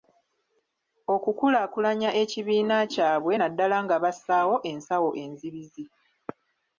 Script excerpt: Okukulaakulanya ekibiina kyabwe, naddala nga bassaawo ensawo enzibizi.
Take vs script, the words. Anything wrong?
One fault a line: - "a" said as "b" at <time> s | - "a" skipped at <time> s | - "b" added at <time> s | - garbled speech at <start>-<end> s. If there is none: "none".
none